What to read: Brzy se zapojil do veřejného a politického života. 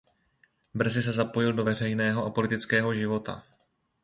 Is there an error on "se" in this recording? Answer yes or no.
no